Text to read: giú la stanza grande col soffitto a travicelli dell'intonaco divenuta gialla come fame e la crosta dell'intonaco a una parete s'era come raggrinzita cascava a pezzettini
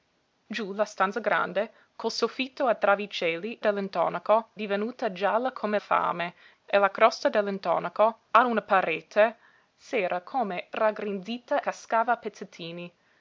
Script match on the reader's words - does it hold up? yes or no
yes